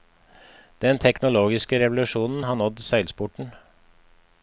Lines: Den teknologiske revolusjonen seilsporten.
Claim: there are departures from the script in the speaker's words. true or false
true